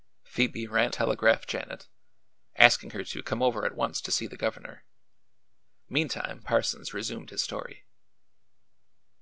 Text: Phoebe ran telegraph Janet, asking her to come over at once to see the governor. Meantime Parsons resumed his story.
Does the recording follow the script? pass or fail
pass